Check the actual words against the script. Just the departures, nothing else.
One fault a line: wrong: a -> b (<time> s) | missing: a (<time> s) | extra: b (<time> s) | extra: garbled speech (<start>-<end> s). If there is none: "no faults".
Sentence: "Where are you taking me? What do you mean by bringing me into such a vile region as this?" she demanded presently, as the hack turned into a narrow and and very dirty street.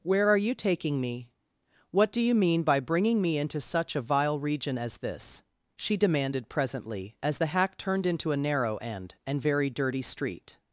no faults